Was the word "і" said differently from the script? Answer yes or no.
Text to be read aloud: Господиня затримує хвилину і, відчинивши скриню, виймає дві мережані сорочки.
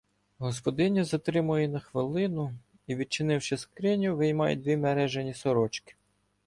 no